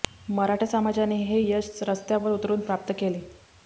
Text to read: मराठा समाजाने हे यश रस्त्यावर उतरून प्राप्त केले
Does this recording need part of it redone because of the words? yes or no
no